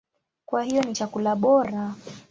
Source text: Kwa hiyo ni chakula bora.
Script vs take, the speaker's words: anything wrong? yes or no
no